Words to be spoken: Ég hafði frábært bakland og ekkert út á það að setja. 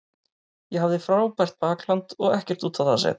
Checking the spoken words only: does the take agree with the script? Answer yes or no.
yes